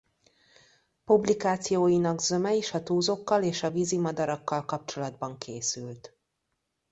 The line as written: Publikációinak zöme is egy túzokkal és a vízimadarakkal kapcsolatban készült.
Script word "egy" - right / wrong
wrong